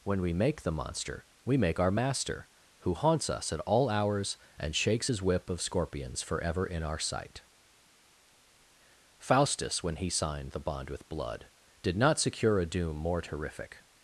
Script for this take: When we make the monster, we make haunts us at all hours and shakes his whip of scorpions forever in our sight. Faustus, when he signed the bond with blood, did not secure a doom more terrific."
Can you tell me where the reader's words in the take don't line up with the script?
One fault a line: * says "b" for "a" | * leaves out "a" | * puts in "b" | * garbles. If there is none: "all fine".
* puts in "our master who"